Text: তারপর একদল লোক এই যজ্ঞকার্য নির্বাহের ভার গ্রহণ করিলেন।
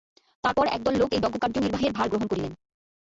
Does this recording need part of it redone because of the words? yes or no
no